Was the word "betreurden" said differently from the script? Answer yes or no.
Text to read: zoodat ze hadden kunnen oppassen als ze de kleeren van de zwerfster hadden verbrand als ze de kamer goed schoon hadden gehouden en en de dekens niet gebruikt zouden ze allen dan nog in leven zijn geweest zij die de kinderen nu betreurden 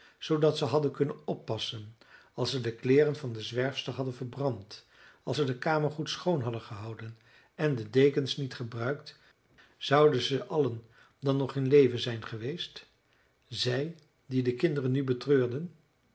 no